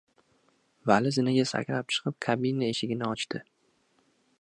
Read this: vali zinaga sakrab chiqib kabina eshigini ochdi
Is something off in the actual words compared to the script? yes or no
no